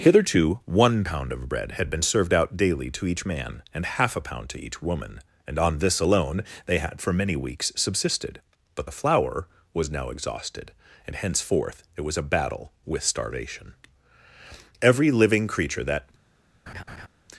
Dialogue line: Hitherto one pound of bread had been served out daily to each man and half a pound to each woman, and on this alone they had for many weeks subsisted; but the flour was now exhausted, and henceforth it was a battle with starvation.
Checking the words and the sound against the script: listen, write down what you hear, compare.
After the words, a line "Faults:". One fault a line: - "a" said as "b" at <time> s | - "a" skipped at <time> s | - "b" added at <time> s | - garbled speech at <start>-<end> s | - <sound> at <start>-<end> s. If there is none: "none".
Hitherto one pound of bread had been served out daily to each man and half a pound to each woman, and on this alone they had for many weeks subsisted; but the flour was now exhausted, and henceforth it was a battle with starvation. Every living creature that
Faults:
- "Every living creature that" added at 14.8 s
- laugh at 16.7-17.1 s